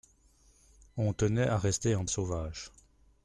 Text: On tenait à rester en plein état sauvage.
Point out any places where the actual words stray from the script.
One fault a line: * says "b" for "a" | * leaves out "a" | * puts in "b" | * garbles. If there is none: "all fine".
* leaves out "plein état"